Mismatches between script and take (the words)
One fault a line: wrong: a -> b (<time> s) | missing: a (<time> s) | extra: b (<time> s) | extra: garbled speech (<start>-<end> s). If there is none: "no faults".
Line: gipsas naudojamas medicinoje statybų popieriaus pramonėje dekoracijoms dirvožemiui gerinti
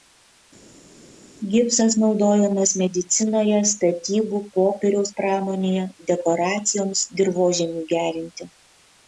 no faults